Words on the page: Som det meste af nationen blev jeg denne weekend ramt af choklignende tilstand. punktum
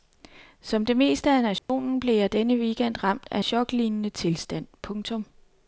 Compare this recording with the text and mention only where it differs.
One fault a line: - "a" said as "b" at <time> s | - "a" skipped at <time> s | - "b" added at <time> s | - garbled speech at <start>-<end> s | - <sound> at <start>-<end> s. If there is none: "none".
- dropout at 1.6-1.7 s